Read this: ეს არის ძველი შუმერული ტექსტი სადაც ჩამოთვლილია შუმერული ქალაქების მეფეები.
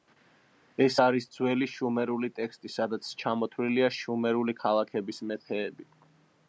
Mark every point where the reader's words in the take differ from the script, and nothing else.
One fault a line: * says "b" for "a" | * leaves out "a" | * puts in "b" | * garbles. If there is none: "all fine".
all fine